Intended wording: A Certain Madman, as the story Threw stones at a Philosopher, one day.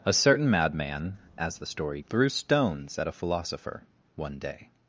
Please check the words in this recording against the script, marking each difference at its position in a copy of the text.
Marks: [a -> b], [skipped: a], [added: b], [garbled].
A Certain Madman, as the story Threw stones at a Philosopher, one day.